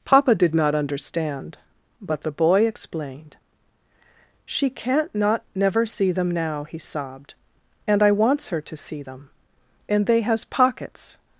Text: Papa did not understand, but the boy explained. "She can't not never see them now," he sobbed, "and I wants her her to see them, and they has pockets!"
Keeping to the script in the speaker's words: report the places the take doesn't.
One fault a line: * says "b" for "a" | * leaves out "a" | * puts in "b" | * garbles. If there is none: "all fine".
* leaves out "her"